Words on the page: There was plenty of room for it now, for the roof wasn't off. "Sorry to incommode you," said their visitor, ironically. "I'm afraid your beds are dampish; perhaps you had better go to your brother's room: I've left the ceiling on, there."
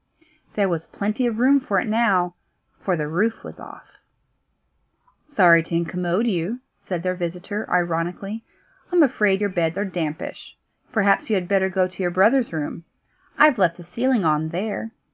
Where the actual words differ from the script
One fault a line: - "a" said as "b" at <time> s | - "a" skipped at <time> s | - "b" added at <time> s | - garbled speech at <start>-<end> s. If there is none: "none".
- "wasn't" said as "was" at 3.4 s